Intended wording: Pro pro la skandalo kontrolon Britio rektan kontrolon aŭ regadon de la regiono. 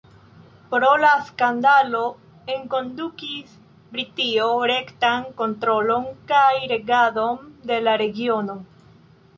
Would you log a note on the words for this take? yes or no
yes